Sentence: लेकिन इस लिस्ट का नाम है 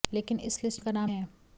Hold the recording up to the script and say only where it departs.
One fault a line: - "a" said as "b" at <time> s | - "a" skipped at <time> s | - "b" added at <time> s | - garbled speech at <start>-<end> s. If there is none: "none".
none